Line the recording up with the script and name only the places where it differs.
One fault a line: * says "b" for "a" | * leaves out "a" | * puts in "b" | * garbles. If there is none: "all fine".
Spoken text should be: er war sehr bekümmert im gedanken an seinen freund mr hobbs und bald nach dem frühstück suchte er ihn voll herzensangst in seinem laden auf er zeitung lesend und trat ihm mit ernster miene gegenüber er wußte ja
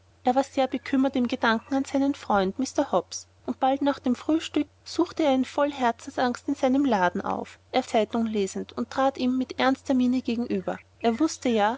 all fine